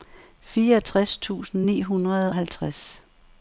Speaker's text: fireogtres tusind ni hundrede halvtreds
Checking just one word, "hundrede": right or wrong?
right